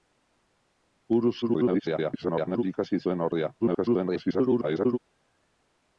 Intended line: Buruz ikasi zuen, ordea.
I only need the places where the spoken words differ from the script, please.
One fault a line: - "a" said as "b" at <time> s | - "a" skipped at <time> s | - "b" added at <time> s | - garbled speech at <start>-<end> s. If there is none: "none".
- garbled speech at 1.4-2.6 s
- garbled speech at 3.6-5.0 s